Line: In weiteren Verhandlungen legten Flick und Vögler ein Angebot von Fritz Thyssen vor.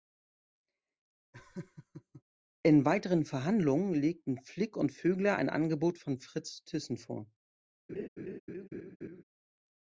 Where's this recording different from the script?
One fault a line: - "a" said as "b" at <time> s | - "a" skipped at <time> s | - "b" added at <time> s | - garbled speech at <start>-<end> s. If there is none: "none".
none